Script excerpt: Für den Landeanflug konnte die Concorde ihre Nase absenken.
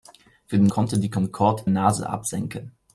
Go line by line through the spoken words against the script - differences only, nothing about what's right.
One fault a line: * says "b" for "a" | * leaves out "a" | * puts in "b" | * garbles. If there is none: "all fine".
* leaves out "Landeanflug"
* leaves out "ihre"